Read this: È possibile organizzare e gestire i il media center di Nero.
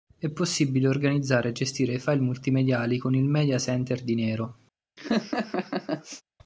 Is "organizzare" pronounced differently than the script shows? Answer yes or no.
no